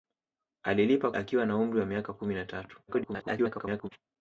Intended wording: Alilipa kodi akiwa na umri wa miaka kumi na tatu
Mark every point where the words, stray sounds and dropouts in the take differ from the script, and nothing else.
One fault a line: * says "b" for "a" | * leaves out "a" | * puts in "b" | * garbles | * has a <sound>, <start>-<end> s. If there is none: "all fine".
* leaves out "kodi"
* garbles